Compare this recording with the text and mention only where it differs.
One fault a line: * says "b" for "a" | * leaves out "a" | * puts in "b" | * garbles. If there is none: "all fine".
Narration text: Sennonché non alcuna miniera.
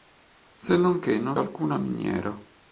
all fine